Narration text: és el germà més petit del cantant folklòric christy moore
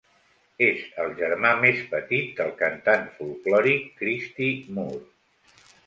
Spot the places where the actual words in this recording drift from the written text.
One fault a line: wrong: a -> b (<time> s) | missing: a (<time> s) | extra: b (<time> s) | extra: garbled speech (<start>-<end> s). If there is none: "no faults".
no faults